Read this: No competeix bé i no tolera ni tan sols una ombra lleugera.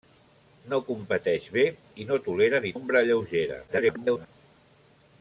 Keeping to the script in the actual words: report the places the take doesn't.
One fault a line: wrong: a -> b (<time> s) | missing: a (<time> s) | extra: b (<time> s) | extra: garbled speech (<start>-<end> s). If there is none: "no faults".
missing: tan sols una (2.7 s)
extra: garbled speech (3.7-4.3 s)